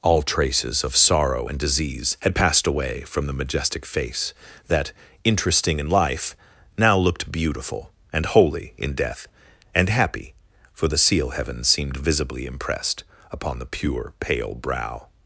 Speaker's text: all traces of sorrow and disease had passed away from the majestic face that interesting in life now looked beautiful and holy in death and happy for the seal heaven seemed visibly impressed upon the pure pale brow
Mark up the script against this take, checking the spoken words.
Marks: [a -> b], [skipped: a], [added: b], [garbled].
all traces of sorrow and disease had passed away from the majestic face that interesting in life now looked beautiful and holy in death and happy for the seal heaven seemed visibly impressed upon the pure pale brow